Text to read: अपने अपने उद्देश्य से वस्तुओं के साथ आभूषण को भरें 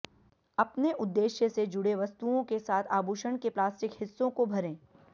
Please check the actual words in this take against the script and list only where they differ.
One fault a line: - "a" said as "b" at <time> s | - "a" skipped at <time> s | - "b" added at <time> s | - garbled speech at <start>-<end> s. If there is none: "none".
- "अपने" skipped at 0.9 s
- "जुड़े" added at 1.7 s
- "के प्लास्टिक हिस्सों" added at 3.4 s